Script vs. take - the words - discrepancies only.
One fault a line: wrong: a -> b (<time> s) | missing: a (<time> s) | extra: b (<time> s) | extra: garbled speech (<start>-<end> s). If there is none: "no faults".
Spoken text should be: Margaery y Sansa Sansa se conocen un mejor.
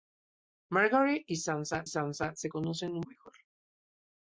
no faults